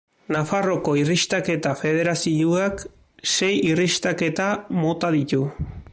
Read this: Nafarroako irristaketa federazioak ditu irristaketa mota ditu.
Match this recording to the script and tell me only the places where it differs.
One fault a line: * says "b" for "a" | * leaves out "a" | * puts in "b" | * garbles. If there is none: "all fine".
* says "sei" for "ditu"